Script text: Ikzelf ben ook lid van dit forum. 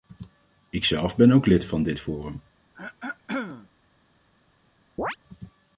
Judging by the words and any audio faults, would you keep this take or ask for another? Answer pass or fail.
fail